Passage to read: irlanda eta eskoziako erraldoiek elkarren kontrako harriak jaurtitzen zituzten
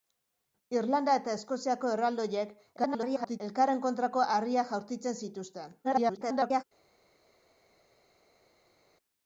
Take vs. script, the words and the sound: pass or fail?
fail